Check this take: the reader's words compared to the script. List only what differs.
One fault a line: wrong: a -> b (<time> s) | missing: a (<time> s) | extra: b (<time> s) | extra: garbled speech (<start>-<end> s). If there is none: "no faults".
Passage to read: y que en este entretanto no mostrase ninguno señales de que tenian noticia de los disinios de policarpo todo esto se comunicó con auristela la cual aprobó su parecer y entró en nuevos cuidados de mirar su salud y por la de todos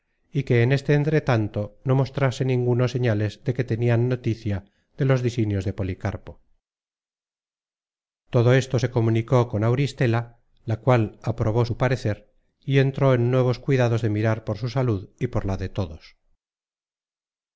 extra: por (14.4 s)